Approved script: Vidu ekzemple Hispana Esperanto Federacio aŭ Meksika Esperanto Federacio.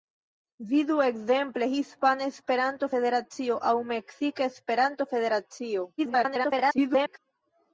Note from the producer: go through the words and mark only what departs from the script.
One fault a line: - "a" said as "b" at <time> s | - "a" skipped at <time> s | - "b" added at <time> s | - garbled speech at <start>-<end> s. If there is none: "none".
- garbled speech at 6.0-7.2 s